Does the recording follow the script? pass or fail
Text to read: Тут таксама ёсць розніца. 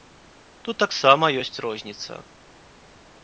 pass